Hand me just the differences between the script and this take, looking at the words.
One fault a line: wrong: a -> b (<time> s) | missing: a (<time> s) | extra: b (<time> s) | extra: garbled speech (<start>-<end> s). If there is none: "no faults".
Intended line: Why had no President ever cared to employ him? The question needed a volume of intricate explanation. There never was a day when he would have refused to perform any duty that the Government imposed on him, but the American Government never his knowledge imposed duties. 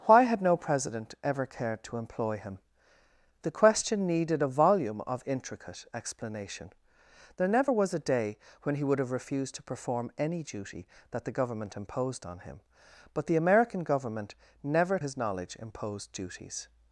no faults